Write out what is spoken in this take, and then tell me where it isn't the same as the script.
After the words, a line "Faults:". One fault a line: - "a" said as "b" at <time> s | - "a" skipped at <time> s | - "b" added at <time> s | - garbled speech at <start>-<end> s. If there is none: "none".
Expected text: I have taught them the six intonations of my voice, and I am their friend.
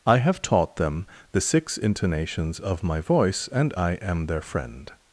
I have taught them the six intonations of my voice, and I am their friend.
Faults:
none